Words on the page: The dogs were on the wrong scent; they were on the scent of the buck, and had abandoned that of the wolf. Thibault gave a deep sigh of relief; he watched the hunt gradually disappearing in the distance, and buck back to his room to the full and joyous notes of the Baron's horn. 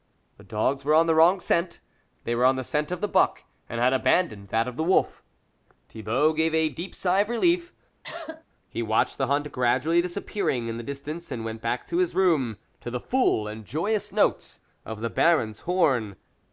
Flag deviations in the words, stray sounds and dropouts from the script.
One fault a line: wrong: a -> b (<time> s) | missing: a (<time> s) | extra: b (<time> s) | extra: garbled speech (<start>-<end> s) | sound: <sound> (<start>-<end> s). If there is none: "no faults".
sound: cough (8.0-8.4 s)
wrong: buck -> went (11.4 s)